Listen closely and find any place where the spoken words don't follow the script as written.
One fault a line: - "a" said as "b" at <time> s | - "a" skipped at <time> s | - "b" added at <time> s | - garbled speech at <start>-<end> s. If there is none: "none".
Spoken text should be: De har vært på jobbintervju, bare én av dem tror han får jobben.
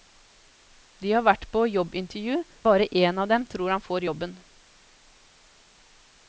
none